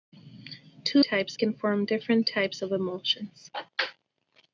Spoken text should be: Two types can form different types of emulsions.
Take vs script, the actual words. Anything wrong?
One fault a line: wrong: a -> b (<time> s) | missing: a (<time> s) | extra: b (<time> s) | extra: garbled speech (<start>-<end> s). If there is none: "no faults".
no faults